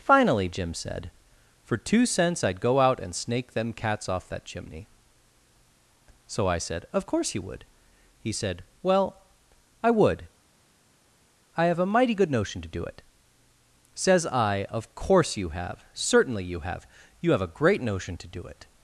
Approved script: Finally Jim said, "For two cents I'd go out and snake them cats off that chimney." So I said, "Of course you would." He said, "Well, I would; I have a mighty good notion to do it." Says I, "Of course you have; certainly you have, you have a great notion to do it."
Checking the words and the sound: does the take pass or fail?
pass